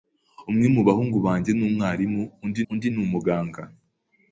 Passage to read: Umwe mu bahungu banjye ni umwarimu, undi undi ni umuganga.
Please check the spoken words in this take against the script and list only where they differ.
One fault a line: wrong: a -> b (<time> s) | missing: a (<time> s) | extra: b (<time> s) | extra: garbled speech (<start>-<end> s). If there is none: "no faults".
no faults